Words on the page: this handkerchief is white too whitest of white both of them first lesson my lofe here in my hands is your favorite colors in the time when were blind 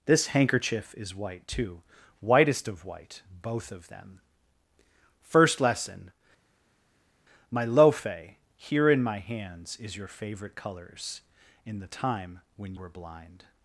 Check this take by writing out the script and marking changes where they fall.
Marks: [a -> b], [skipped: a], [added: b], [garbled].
this handkerchief is white too whitest of white both of them first lesson my lofe here in my hands is your favorite colors in the time when were blind